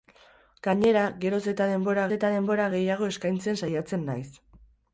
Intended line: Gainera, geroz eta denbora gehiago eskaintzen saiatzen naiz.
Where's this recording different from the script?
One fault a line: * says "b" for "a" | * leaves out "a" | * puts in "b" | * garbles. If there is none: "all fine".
* puts in "eta denbora"